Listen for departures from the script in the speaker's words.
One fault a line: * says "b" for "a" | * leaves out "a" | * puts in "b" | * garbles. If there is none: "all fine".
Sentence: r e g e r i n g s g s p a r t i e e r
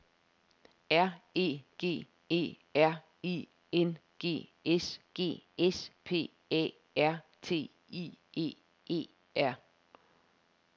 all fine